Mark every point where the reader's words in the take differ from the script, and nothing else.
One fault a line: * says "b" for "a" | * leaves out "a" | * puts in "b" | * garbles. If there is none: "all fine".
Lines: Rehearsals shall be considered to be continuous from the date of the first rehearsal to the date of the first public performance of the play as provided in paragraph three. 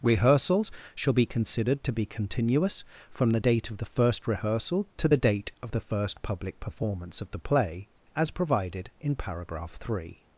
all fine